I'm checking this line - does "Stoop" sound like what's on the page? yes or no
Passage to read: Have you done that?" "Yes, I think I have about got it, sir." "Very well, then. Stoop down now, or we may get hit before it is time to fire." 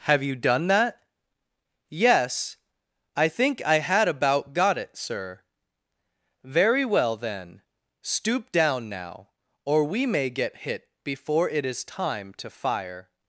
yes